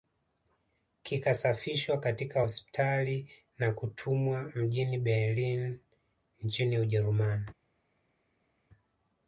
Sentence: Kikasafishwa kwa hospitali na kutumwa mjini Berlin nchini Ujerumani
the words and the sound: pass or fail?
fail